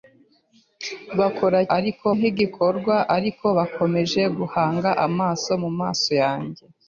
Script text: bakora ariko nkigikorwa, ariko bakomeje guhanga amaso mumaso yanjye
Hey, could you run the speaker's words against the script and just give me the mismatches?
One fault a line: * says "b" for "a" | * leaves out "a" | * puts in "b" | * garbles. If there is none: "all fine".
all fine